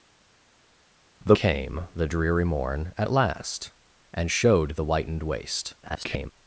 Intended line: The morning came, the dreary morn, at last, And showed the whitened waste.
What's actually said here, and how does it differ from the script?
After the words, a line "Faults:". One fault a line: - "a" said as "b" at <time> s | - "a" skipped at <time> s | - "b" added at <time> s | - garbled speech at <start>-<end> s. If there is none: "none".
The came, the dreary morn, at last, And showed the whitened waste. [garbled]
Faults:
- "morning" skipped at 1.4 s
- garbled speech at 5.8-6.3 s